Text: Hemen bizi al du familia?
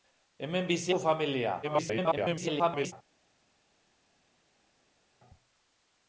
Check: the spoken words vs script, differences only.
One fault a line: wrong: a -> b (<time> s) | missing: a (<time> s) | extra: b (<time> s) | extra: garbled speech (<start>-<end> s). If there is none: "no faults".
missing: al (0.9 s)
extra: garbled speech (1.6-2.9 s)